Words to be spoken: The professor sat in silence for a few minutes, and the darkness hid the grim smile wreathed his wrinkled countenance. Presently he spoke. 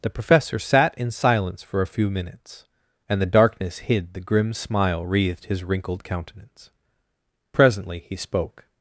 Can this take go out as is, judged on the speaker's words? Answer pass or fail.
pass